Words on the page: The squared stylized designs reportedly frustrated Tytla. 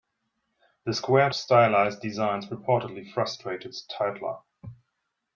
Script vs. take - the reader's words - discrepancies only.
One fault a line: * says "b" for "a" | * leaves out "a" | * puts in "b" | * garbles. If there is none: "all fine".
all fine